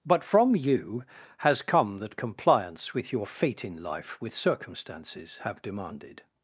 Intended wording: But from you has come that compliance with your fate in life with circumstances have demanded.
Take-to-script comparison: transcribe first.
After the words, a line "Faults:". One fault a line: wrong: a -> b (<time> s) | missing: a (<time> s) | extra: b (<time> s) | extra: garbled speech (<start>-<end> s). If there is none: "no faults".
But from you has come that compliance with your fate in life with circumstances have demanded.
Faults:
no faults